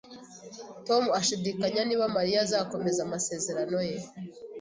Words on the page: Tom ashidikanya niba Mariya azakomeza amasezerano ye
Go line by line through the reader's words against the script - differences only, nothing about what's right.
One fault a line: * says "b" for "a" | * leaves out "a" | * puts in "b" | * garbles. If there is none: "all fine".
all fine